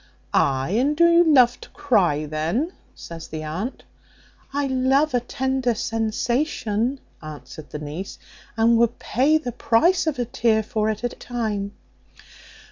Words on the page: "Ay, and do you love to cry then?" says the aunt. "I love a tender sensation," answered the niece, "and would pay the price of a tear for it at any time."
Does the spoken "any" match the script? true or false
false